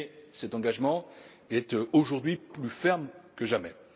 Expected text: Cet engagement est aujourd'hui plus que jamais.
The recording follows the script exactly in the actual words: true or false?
false